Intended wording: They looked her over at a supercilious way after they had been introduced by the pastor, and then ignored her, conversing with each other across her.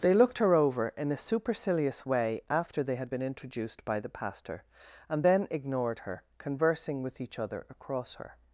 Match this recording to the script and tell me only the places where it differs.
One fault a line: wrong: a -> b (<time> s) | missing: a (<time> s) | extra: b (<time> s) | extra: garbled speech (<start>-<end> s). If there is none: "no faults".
wrong: at -> in (1.0 s)